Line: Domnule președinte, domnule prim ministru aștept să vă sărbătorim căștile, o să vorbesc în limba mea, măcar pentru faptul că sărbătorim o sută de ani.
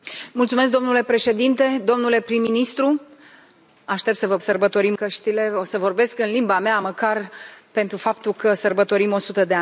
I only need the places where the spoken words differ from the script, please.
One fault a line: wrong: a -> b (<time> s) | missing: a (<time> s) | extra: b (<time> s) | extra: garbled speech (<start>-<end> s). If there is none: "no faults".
no faults